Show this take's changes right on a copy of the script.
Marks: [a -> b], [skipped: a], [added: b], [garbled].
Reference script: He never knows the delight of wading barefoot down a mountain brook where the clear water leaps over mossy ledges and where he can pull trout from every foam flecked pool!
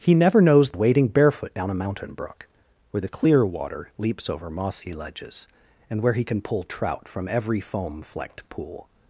He never knows [skipped: the delight of] wading barefoot down a mountain brook where the clear water leaps over mossy ledges and where he can pull trout from every foam flecked pool!